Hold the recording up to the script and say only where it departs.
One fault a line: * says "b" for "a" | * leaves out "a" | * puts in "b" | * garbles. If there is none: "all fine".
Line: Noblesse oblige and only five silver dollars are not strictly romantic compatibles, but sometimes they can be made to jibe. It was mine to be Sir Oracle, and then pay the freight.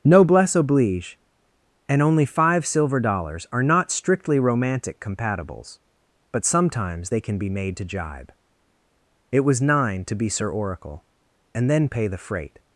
* says "nine" for "mine"